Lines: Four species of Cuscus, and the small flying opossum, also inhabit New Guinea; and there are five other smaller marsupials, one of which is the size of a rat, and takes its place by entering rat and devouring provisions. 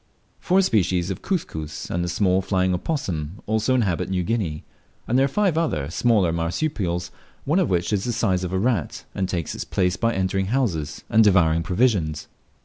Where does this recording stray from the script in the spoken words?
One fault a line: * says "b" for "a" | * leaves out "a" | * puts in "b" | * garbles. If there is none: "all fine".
* says "houses" for "rat"